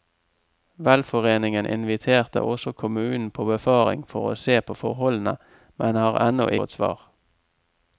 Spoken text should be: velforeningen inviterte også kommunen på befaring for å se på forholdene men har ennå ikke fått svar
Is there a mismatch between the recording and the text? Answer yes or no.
yes